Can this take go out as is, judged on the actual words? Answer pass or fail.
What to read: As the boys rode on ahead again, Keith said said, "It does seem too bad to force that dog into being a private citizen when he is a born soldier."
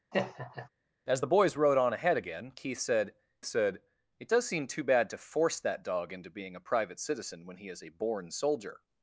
pass